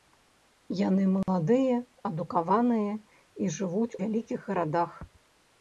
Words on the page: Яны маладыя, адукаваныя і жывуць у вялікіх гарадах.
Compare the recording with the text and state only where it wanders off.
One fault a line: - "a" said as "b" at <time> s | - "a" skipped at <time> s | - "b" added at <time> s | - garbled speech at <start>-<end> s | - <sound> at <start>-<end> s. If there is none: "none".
- dropout at 1.2-1.3 s
- "у" skipped at 3.9 s